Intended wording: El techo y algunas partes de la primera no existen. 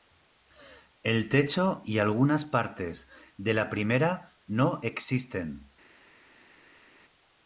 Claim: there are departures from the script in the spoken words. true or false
false